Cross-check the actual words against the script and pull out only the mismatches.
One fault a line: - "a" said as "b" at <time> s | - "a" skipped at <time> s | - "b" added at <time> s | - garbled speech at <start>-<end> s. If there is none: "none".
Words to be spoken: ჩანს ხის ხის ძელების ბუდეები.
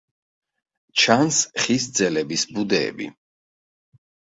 - "ხის" skipped at 1.9 s